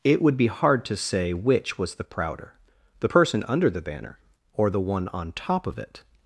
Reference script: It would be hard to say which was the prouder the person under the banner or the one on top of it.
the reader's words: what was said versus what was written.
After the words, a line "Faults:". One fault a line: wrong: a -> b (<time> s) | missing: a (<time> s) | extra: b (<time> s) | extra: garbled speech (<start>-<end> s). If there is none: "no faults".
It would be hard to say which was the prouder the person under the banner or the one on top of it.
Faults:
no faults